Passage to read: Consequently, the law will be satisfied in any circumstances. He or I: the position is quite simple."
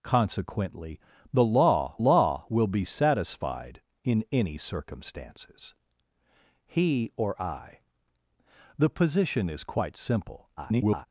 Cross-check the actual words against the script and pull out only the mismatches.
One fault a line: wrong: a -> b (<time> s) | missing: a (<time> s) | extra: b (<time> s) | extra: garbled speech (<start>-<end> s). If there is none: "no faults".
extra: law (2.0 s)
extra: garbled speech (10.6-11.1 s)